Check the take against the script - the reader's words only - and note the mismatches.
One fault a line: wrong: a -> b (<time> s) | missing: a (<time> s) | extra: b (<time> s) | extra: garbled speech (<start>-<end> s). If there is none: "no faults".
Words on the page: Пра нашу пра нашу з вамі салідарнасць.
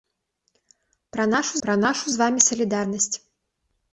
no faults